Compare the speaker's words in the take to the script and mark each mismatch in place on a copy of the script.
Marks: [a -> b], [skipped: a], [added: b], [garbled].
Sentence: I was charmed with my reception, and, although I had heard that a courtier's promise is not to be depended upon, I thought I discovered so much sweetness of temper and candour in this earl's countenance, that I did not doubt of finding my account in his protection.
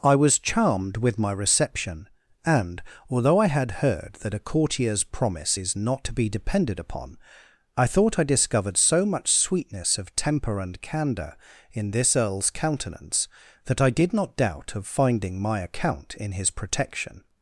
I was charmed with my reception, and, although I had heard that a courtier's promise is not to be depended upon, I thought I discovered so much sweetness of temper and candour in this earl's countenance, that I did not doubt of finding my account in his protection.